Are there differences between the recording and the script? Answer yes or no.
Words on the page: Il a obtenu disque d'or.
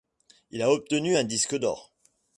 yes